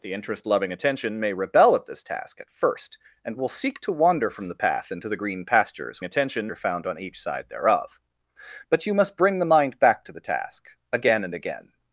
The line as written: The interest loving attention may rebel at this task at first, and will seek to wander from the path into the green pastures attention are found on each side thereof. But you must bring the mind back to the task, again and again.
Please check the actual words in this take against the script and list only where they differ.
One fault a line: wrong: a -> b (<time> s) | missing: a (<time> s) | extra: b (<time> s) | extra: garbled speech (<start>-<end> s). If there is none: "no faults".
no faults